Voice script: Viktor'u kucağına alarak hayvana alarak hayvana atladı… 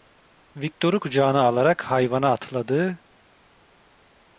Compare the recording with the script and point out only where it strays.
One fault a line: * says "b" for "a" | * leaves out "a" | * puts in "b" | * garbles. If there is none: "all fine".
* leaves out "alarak hayvana"